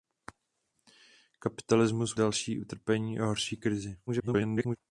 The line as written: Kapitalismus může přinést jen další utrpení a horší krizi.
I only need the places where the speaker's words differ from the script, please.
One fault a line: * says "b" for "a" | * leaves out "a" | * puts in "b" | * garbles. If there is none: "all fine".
* leaves out "může přinést jen"
* garbles